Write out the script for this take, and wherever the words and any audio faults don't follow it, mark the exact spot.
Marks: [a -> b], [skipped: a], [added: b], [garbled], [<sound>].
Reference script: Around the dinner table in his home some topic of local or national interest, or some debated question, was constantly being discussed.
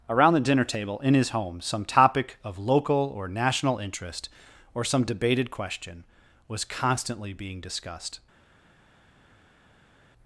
Around the dinner table in his home some topic of local or national interest, or some debated question, was constantly being discussed.